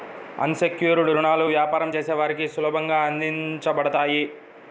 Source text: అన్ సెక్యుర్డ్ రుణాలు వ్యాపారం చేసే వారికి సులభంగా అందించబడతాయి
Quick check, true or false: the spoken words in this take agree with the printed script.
true